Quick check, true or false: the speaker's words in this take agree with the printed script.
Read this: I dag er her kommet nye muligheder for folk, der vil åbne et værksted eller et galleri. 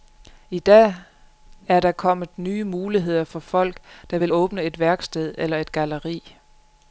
false